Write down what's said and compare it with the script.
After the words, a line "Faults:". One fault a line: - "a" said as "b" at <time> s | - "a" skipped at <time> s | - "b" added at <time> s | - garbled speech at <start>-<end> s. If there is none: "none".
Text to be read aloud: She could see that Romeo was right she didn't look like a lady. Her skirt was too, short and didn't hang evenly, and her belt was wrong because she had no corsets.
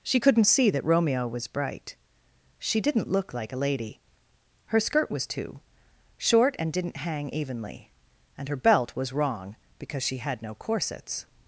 She couldn't see that Romeo was bright she didn't look like a lady. Her skirt was too, short and didn't hang evenly, and her belt was wrong because she had no corsets.
Faults:
- "could" said as "couldn't" at 0.2 s
- "right" said as "bright" at 1.5 s